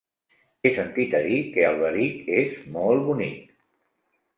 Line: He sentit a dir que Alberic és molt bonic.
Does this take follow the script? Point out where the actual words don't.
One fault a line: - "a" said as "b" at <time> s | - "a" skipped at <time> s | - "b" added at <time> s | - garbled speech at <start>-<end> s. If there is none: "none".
none